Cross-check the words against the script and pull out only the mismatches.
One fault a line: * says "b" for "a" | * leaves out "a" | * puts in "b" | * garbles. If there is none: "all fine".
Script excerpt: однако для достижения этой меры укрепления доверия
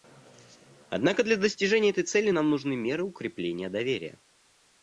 * puts in "цели нам нужны"